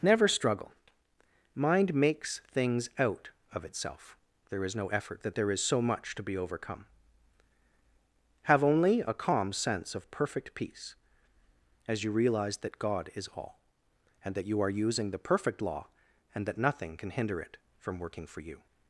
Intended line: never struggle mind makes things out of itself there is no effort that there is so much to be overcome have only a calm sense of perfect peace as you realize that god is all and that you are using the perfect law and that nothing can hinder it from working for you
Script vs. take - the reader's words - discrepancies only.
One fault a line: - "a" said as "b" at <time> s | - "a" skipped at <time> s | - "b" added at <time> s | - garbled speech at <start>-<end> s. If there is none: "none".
none